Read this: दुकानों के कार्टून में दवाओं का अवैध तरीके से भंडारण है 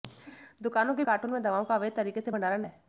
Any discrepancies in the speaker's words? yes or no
no